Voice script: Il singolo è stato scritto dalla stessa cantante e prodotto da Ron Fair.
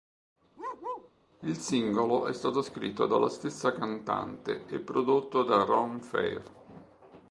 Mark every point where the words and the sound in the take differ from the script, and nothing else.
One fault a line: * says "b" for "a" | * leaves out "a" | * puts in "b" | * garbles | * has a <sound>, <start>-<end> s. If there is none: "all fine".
* has a bark, 0.6-1.1 s